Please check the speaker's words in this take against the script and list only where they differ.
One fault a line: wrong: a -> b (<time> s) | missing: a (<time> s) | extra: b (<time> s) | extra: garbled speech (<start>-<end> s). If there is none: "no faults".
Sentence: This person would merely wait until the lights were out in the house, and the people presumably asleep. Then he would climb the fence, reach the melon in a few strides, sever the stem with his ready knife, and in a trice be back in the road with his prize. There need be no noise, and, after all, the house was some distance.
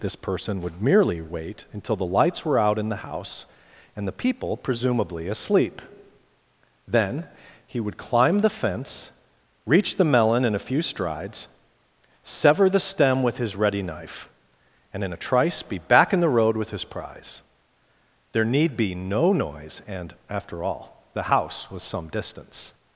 no faults